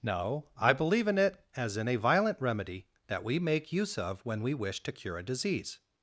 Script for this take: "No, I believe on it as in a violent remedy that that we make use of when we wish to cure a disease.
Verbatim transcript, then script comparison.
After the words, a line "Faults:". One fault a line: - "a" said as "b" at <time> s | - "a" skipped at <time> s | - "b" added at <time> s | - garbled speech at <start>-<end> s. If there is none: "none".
"No, I believe in it as in a violent remedy that we make use of when we wish to cure a disease.
Faults:
- "on" said as "in" at 1.1 s
- "that" skipped at 3.2 s